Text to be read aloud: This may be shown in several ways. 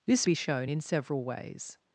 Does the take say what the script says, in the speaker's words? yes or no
no